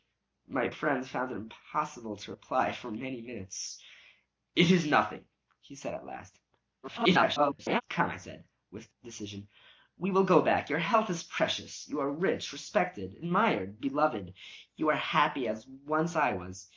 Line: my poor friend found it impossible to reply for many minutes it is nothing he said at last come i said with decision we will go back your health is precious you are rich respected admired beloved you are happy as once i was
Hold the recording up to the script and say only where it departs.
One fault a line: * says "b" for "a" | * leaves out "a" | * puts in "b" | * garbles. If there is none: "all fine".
* leaves out "poor"
* garbles